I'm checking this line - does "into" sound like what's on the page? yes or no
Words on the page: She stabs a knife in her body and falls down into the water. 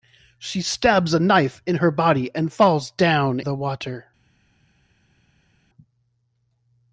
no